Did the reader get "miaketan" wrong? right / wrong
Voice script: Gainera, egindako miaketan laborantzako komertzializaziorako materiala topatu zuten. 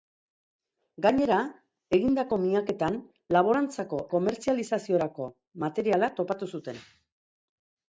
right